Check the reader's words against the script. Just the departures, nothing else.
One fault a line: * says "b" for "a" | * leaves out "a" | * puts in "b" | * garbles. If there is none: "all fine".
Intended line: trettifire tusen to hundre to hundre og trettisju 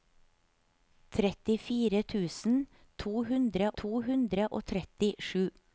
all fine